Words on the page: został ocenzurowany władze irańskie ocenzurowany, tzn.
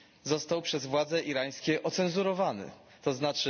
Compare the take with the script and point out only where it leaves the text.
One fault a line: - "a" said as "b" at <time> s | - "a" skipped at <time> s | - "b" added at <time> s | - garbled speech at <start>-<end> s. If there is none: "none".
- "ocenzurowany" said as "przez" at 0.6 s